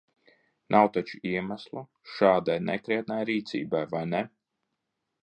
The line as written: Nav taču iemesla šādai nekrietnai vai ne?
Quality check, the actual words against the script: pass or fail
fail